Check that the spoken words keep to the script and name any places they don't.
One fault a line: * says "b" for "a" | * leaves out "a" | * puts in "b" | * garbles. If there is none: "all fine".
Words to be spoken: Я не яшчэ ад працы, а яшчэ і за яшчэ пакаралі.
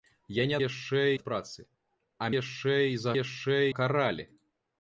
all fine